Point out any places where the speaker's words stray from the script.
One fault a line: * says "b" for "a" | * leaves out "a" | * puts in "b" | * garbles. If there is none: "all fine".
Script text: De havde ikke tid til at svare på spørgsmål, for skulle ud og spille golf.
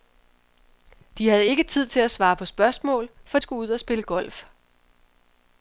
all fine